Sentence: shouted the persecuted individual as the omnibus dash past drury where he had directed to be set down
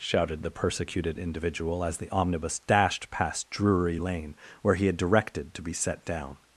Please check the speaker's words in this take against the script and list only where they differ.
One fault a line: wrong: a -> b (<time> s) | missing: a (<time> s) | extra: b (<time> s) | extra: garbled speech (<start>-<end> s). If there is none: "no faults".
wrong: dash -> dashed (2.6 s)
extra: lane (4.0 s)